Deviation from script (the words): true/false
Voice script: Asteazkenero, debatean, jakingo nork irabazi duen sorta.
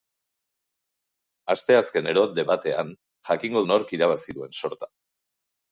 false